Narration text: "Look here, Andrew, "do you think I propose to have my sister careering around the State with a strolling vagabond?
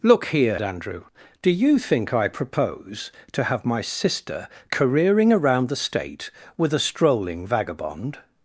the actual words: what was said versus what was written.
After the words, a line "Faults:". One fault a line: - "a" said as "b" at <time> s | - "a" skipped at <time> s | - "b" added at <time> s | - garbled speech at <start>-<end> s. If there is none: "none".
"Look here, Andrew, "do you think I propose to have my sister careering around the State with a strolling vagabond?
Faults:
none